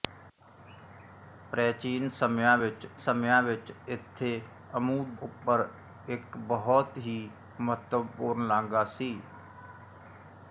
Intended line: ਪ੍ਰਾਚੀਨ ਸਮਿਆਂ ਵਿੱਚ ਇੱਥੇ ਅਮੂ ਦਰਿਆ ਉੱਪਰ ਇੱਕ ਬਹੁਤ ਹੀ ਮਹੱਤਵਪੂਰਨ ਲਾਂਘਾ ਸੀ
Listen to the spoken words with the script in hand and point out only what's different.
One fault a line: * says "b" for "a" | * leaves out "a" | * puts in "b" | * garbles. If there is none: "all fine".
* puts in "ਸਮਿਆਂ ਵਿੱਚ"
* leaves out "ਦਰਿਆ"